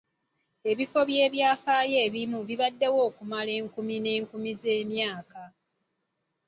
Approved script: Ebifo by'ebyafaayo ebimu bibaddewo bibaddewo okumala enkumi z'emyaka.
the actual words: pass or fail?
fail